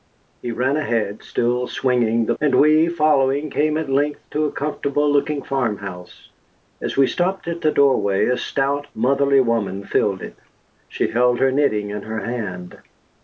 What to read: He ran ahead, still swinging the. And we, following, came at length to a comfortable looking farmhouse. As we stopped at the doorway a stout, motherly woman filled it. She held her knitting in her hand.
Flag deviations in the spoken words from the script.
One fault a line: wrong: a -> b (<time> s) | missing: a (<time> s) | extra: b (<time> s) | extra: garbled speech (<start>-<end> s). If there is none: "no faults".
no faults